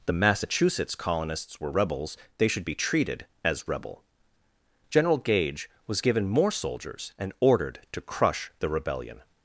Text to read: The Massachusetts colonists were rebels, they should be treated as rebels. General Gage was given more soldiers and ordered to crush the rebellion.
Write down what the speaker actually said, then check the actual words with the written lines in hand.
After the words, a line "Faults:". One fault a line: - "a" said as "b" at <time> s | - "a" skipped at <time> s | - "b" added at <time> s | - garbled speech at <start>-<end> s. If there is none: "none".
The Massachusetts colonists were rebels, they should be treated as rebel. General Gage was given more soldiers and ordered to crush the rebellion.
Faults:
- "rebels" said as "rebel" at 3.7 s